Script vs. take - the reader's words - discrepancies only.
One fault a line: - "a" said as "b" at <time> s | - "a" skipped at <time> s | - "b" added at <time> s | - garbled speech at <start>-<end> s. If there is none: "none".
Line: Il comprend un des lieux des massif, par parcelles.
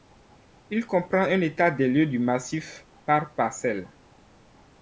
- "état" added at 1.4 s
- "des" said as "du" at 2.1 s